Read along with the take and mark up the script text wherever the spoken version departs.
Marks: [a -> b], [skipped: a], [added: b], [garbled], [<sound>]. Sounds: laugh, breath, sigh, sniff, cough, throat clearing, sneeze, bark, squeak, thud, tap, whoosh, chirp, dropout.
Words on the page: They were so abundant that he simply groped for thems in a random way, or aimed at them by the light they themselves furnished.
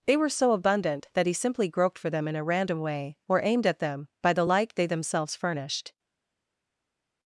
They were so abundant that he simply groped for [thems -> them] in a random way, or aimed at them by the light they themselves furnished.